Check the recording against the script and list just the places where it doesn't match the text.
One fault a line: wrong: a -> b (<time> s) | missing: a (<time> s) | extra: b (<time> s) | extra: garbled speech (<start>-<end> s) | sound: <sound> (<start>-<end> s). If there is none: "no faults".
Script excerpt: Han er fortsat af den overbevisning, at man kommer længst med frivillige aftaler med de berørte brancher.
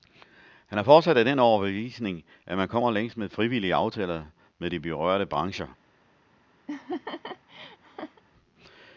sound: laugh (6.7-8.2 s)